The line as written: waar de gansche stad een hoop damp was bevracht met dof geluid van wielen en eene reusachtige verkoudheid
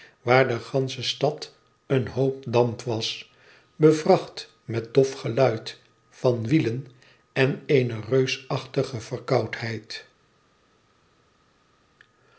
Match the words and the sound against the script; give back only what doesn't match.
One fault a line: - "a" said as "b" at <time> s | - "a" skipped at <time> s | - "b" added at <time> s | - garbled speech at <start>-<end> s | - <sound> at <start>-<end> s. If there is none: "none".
none